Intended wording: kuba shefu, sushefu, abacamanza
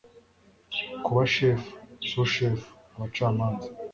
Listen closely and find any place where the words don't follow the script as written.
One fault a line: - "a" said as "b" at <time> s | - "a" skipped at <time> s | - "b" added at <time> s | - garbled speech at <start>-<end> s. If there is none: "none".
none